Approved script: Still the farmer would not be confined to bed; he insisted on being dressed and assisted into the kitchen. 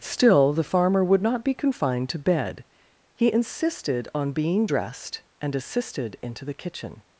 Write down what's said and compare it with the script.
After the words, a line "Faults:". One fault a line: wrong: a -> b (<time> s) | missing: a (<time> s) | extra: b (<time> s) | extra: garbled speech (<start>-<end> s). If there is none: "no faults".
Still the farmer would not be confined to bed; he insisted on being dressed and assisted into the kitchen.
Faults:
no faults